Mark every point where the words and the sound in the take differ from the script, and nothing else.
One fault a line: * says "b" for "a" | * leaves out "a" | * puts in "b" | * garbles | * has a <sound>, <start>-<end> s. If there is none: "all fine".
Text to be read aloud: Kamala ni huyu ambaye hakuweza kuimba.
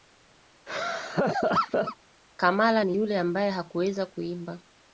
* has a laugh, 0.7-2.0 s
* says "yule" for "huyu"